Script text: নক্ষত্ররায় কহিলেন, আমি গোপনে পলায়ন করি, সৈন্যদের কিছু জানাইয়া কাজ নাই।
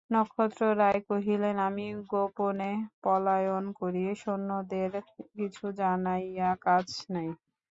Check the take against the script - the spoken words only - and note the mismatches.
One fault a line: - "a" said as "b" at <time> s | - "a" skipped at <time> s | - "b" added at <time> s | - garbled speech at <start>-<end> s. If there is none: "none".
none